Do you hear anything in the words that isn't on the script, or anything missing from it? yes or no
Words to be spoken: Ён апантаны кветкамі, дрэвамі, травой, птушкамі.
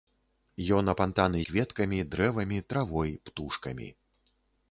no